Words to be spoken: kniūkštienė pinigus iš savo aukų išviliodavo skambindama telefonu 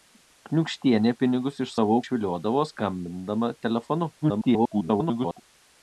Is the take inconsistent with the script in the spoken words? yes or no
yes